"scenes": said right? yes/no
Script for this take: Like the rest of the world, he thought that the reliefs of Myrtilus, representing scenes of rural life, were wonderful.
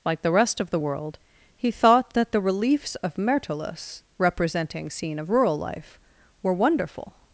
no